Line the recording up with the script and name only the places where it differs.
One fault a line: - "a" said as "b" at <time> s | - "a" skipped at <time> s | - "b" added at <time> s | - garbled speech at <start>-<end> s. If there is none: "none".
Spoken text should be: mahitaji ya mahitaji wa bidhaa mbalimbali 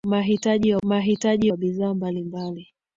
none